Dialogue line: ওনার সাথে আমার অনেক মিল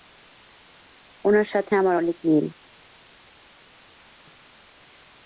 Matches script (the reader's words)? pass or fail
pass